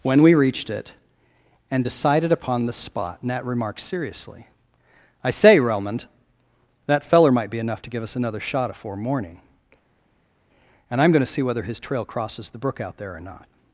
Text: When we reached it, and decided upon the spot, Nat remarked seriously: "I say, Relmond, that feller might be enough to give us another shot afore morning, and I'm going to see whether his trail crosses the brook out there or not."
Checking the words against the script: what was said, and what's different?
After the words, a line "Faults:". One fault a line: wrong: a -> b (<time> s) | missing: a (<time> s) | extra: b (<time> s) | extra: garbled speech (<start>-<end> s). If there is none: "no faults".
When we reached it, and decided upon the spot, Nat remarked seriously: "I say, Relmond, that feller might be enough to give us another shot afore morning, and I'm going to see whether his trail crosses the brook out there or not."
Faults:
no faults